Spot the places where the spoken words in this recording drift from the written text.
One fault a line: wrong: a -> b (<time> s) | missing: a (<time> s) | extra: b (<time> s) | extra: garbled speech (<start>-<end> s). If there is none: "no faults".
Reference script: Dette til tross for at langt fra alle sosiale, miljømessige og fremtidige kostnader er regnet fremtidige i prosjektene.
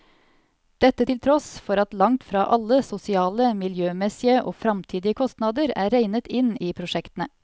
wrong: fremtidige -> inn (6.3 s)